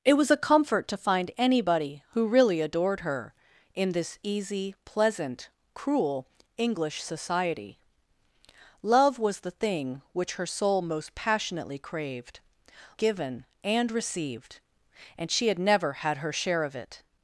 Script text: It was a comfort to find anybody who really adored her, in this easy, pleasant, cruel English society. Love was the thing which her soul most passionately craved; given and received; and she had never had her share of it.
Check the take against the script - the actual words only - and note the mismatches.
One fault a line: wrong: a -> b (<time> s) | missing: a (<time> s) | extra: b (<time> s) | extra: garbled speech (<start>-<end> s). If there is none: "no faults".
no faults